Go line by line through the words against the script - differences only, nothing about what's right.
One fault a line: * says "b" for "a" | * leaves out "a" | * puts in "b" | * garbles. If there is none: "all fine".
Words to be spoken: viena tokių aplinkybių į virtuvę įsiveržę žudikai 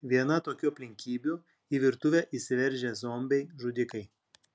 * puts in "zombiai"